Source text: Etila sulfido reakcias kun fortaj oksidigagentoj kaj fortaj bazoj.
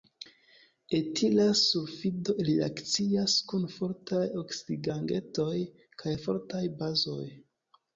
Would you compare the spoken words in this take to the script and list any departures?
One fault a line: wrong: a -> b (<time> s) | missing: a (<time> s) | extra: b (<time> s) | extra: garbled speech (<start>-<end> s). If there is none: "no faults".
no faults